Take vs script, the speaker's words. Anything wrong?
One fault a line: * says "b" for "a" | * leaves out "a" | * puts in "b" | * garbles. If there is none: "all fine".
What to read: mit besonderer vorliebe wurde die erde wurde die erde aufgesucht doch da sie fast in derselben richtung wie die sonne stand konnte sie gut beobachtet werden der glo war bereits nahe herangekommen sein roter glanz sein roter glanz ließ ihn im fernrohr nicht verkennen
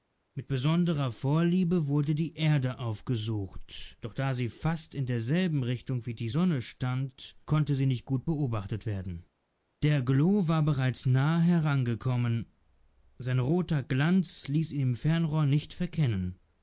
* leaves out "wurde die erde"
* puts in "nicht"
* leaves out "sein roter glanz"